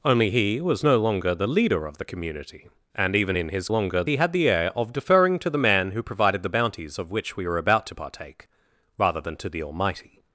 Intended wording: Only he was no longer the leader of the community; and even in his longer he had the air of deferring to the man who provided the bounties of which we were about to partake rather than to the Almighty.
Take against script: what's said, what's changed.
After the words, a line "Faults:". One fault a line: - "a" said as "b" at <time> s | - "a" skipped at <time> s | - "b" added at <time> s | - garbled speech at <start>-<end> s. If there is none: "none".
Only he was no longer the leader of the community; and even in his longer he had the air of deferring to the man who provided the bounties of which we were about to partake rather than to the Almighty.
Faults:
none